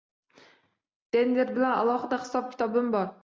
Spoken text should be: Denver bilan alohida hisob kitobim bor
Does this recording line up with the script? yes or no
yes